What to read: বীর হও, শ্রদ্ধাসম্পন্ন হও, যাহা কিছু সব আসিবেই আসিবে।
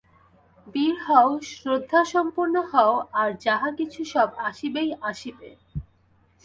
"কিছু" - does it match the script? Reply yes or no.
yes